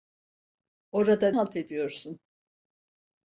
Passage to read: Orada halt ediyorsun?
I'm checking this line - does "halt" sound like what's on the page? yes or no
yes